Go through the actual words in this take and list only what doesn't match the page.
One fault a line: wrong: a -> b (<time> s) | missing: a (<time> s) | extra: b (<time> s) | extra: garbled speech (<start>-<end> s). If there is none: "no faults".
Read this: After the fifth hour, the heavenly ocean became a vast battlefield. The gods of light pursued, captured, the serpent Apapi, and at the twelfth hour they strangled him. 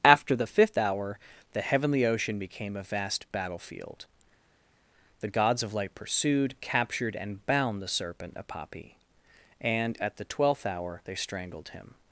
extra: and bound (7.2 s)